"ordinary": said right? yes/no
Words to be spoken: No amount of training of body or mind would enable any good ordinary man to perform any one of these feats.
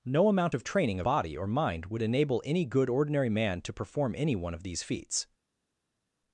yes